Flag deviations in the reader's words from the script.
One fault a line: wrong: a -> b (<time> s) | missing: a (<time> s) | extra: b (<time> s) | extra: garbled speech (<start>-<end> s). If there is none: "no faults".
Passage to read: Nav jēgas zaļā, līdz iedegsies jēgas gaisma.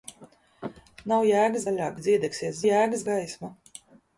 no faults